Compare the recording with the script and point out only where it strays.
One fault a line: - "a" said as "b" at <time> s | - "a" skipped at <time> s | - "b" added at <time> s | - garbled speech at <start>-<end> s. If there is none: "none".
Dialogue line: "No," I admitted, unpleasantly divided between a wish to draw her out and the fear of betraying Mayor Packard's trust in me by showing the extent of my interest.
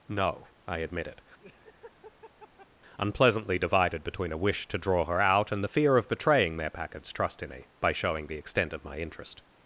none